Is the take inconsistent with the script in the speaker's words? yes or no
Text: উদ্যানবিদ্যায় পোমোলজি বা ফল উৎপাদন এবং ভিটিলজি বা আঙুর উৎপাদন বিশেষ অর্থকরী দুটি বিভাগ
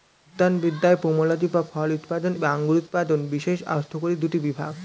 yes